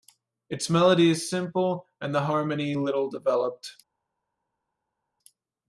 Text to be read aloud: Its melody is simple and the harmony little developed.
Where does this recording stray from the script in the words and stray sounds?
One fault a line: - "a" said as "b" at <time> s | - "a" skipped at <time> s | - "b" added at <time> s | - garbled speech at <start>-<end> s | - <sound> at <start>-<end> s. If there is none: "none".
none